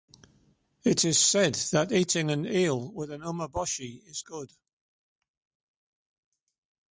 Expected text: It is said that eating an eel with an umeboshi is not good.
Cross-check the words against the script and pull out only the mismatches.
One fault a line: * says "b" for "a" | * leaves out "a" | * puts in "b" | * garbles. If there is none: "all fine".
* leaves out "not"